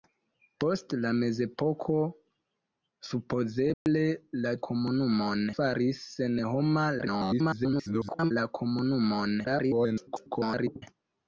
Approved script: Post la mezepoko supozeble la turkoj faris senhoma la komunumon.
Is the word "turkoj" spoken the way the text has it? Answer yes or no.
no